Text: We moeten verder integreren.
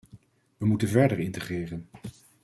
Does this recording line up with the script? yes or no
yes